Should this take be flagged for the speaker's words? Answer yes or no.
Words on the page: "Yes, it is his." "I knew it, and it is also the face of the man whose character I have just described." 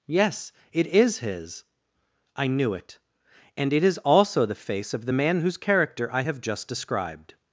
no